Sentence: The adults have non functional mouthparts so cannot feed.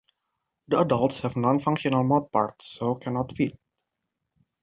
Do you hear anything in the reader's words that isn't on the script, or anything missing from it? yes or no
no